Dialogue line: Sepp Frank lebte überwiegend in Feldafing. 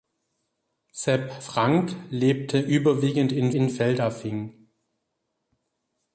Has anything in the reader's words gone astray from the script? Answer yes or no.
yes